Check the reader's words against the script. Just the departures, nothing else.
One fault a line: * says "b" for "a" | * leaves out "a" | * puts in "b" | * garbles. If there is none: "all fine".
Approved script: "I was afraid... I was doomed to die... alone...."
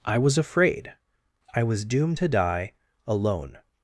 all fine